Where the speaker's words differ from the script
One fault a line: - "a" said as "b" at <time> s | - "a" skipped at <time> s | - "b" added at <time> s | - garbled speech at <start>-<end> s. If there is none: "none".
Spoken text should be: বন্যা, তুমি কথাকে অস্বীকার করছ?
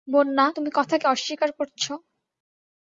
none